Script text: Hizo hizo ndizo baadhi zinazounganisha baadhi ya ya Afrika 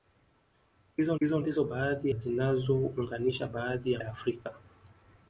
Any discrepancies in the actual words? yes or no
no